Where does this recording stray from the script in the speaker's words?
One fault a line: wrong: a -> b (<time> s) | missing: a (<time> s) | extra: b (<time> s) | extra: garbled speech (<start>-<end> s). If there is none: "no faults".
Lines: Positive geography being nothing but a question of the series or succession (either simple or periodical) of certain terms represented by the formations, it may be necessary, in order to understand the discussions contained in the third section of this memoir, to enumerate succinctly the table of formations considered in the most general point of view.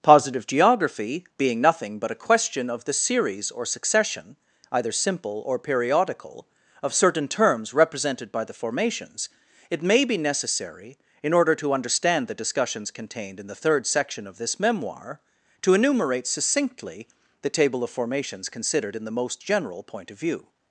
no faults